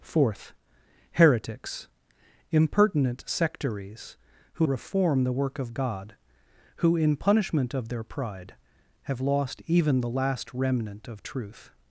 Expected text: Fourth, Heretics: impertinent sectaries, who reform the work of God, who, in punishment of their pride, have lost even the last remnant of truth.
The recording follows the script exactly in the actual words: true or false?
true